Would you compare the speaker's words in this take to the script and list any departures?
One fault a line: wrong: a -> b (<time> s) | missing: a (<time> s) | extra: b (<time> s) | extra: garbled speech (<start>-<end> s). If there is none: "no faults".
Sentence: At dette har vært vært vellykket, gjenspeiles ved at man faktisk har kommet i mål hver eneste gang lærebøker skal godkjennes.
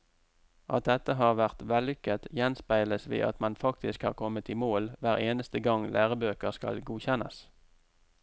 missing: vært (1.6 s)